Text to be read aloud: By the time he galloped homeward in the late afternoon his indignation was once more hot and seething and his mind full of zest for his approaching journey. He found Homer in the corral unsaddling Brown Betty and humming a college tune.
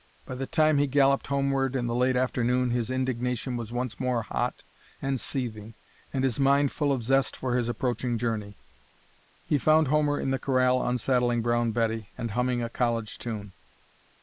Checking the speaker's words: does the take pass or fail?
pass